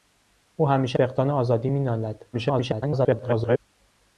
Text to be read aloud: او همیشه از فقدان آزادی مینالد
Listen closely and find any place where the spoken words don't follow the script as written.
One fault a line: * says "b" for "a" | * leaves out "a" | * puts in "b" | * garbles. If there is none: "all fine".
* leaves out "از"
* garbles